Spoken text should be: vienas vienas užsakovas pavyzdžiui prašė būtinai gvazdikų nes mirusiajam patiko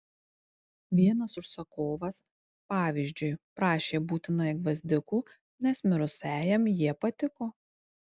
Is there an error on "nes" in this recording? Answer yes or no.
no